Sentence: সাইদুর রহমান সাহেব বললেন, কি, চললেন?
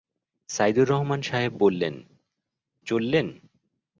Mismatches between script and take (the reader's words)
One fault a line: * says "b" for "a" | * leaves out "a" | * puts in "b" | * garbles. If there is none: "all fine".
* leaves out "কি"